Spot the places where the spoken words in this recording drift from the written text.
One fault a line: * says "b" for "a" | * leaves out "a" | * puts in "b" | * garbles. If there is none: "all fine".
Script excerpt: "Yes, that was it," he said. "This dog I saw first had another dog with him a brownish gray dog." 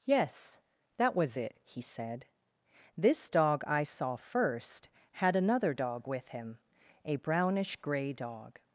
all fine